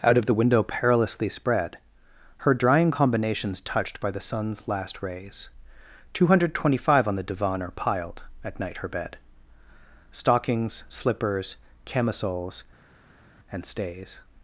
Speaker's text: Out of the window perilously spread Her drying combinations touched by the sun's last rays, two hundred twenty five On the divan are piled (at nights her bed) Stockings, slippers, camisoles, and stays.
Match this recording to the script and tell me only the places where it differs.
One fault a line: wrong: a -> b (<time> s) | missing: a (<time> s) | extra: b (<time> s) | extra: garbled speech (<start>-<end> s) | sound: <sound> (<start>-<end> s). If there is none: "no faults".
wrong: nights -> night (8.6 s)